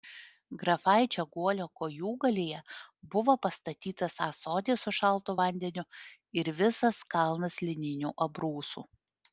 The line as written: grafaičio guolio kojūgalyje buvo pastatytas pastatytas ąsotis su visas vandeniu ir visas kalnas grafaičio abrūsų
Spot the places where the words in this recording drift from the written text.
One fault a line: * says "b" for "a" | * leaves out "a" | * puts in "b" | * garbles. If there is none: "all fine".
* leaves out "pastatytas"
* says "šaltu" for "visas"
* says "lininių" for "grafaičio"